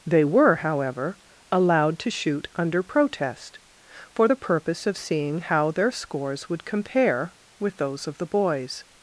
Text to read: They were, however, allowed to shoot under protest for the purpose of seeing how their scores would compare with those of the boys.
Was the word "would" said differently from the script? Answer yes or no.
no